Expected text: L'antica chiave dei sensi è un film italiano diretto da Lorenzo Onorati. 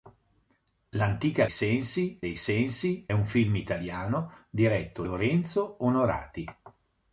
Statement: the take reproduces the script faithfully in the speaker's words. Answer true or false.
false